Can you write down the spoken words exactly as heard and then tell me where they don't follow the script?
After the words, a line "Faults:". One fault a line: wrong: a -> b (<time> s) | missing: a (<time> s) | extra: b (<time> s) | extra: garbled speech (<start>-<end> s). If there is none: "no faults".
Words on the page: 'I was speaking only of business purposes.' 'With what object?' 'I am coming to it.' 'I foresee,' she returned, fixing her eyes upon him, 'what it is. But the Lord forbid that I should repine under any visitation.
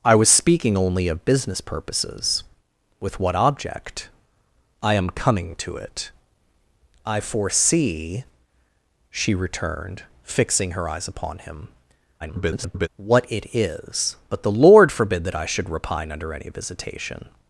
'I was speaking only of business purposes.' 'With what object?' 'I am coming to it.' 'I foresee,' she returned, fixing her eyes upon him, [garbled] 'what it is. But the Lord forbid that I should repine under any visitation.
Faults:
extra: garbled speech (12.2-12.9 s)